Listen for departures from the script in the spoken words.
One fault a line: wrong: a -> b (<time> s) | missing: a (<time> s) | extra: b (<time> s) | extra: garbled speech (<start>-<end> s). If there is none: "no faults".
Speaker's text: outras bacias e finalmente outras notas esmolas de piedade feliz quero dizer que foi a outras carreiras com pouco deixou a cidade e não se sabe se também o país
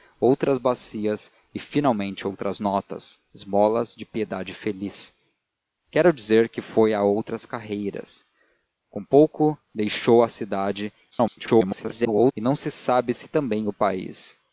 extra: garbled speech (11.1-12.3 s)